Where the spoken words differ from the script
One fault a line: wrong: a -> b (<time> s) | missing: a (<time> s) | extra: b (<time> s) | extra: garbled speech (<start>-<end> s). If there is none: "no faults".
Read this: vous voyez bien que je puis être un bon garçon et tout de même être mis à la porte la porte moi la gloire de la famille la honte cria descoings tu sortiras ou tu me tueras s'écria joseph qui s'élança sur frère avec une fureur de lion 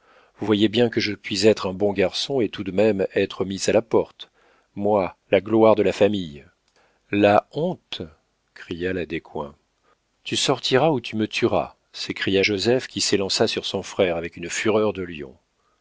missing: la porte (4.3 s)
extra: la (8.9 s)
extra: son (13.6 s)